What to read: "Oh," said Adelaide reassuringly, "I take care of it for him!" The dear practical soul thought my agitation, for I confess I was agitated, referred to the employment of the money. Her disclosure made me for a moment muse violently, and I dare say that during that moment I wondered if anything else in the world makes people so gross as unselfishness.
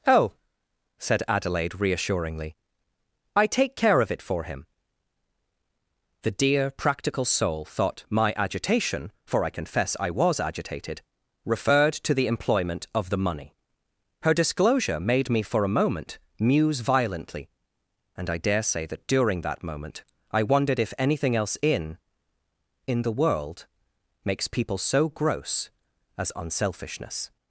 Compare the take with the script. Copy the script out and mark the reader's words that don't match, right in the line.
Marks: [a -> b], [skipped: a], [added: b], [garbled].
"Oh," said Adelaide reassuringly, "I take care of it for him!" The dear practical soul thought my agitation, for I confess I was agitated, referred to the employment of the money. Her disclosure made me for a moment muse violently, and I dare say that during that moment I wondered if anything else in [added: in] the world makes people so gross as unselfishness.